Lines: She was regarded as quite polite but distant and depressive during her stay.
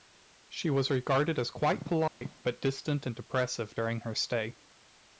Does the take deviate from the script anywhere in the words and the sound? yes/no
yes